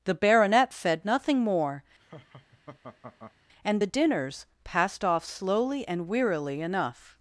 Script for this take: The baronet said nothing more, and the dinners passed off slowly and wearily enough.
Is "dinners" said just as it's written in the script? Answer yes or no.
yes